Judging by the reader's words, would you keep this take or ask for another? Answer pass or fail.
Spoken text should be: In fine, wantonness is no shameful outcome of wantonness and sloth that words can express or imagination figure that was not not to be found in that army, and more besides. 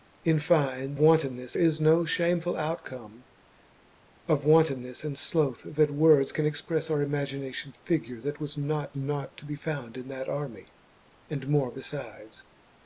pass